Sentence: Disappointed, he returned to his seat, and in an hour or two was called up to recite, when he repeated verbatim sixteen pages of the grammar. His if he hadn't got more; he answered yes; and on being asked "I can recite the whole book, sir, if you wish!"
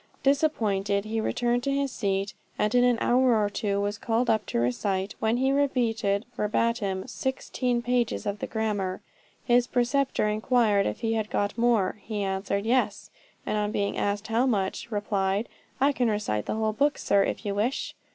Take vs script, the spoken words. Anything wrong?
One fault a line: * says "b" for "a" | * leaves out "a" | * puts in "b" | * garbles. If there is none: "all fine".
* puts in "preceptor inquired"
* says "had" for "hadn't"
* puts in "how much replied"